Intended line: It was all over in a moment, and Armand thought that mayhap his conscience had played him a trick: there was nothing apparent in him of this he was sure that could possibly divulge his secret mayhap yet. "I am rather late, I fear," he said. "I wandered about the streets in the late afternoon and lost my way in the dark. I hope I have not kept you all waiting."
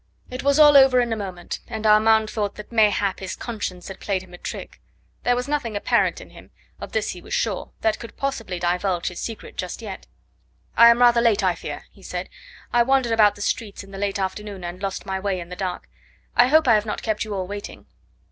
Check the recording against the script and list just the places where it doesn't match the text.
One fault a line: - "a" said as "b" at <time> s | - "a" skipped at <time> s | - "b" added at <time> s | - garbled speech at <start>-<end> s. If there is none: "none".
- "mayhap" said as "just" at 9.6 s